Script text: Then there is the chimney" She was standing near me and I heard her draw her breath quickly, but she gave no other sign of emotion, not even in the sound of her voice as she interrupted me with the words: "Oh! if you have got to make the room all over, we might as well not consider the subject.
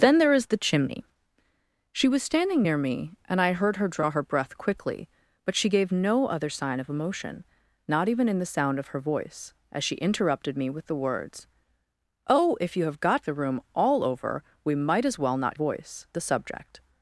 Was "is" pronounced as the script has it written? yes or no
yes